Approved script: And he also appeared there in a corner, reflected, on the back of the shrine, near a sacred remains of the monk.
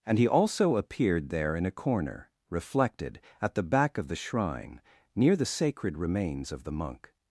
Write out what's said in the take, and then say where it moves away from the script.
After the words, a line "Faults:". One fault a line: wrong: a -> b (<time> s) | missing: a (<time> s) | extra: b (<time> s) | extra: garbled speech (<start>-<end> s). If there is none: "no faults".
And he also appeared there in a corner, reflected, at the back of the shrine, near the sacred remains of the monk.
Faults:
wrong: on -> at (3.4 s)
wrong: a -> the (5.3 s)